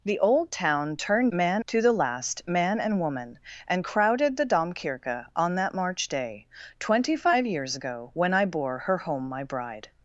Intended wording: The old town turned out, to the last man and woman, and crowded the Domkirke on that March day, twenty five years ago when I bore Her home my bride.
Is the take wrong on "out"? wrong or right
wrong